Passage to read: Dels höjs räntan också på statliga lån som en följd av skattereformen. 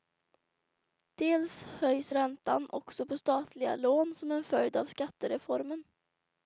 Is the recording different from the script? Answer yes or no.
no